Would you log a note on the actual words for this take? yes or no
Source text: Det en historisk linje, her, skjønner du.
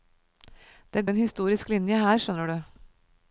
no